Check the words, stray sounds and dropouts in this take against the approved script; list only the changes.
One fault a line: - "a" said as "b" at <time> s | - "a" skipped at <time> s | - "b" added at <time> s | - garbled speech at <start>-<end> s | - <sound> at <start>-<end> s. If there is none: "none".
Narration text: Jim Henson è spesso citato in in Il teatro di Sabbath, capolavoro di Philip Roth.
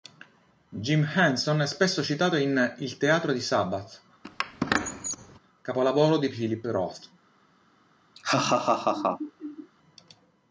- "in" skipped at 2.7 s
- squeak at 4.2-5.4 s
- laugh at 8.1-9.7 s